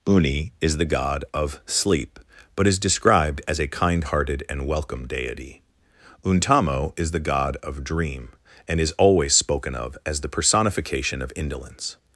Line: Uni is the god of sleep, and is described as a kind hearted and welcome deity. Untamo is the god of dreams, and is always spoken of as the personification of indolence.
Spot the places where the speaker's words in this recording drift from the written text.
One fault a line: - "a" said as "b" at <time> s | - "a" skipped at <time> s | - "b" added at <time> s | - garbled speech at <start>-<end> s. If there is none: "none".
- "and" said as "but" at 2.5 s
- "dreams" said as "dream" at 7.8 s